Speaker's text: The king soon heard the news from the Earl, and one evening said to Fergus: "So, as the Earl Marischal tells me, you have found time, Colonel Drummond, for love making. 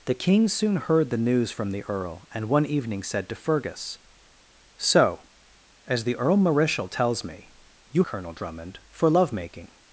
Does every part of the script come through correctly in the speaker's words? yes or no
no